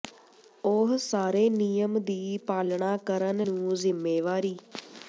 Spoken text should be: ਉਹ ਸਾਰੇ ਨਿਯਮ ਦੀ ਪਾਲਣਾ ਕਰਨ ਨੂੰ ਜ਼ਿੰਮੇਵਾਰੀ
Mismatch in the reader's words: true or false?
false